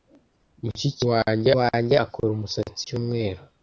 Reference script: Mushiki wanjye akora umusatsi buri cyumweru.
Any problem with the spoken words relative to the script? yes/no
yes